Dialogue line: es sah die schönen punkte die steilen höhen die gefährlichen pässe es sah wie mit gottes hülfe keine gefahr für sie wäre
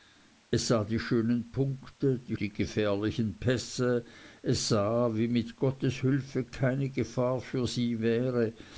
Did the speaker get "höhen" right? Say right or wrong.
wrong